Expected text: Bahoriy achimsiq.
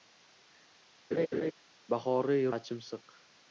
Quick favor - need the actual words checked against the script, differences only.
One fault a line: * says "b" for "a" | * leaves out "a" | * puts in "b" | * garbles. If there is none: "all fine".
all fine